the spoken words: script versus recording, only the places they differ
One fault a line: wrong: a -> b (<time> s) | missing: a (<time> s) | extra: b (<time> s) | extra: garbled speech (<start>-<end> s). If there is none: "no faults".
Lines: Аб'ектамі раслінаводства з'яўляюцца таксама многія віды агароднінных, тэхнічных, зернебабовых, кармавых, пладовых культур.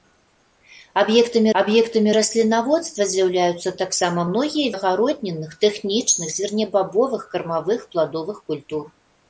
extra: аб'ектамі (1.6 s)
missing: віды (4.7 s)